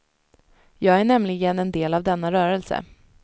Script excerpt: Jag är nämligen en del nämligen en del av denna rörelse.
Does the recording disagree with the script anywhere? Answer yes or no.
yes